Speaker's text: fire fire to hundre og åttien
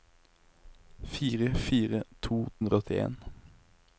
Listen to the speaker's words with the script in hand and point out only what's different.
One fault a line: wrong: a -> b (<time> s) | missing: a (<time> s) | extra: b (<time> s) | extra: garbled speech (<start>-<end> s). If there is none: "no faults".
no faults